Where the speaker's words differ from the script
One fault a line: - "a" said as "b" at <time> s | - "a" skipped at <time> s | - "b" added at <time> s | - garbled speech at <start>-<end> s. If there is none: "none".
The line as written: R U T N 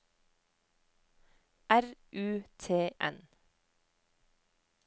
none